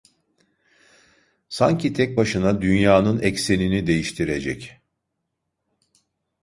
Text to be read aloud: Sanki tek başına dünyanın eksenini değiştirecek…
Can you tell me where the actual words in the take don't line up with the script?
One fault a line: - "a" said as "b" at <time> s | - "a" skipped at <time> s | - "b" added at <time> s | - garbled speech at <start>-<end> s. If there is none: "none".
none